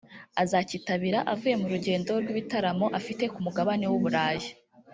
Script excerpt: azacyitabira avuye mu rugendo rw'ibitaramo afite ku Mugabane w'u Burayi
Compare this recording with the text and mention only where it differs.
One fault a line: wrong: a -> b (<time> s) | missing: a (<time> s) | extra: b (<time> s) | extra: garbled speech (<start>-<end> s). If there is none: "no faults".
no faults